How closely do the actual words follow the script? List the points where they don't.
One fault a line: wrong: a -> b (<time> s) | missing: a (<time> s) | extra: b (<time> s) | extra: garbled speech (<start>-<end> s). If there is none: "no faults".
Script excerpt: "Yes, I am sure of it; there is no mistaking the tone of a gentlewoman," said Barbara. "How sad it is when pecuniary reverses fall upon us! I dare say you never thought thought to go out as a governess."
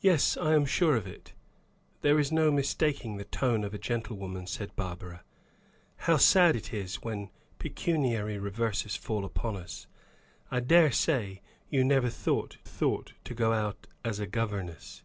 no faults